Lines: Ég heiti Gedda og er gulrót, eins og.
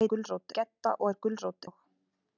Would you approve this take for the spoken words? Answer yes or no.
no